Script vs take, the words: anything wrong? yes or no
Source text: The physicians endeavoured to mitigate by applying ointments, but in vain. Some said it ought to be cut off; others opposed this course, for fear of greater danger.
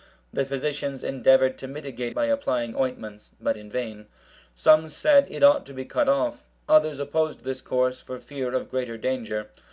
no